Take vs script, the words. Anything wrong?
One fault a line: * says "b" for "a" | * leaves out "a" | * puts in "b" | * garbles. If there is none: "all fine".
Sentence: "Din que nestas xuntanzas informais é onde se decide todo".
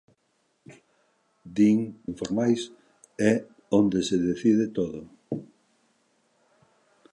* leaves out "que nestas xuntanzas"